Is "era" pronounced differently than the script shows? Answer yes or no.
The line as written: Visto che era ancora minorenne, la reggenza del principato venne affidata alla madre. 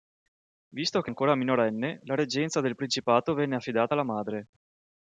yes